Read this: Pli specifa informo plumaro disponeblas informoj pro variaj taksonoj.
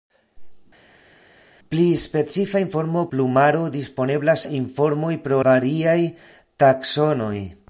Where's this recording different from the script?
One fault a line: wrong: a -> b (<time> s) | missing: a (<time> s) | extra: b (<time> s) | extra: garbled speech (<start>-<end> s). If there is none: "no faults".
no faults